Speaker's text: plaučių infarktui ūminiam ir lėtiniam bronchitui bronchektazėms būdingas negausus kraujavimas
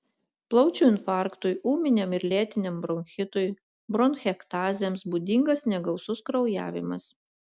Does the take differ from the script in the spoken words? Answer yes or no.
no